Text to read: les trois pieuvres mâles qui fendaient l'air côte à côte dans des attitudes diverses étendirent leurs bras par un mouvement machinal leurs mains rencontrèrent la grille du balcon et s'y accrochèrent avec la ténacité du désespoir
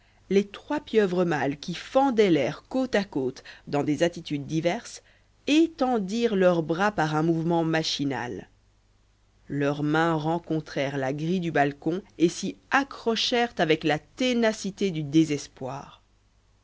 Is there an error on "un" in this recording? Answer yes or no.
no